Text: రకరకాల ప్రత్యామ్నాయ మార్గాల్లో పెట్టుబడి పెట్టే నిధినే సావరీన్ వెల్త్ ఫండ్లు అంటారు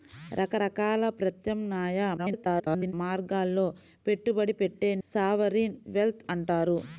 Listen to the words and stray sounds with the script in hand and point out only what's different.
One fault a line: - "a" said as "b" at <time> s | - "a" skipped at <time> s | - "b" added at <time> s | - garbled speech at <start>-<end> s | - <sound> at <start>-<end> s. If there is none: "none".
- garbled speech at 2.2-2.9 s
- "నిధినే" skipped at 4.9 s
- "ఫండ్లు" skipped at 6.2 s